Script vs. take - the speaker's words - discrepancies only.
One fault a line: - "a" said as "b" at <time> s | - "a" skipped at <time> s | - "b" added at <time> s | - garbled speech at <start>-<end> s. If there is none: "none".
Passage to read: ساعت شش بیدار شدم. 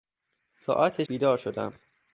- "شش" skipped at 1.0 s